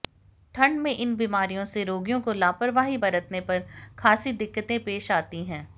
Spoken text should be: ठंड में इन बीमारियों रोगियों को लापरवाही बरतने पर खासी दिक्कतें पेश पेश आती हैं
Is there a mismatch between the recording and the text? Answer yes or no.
yes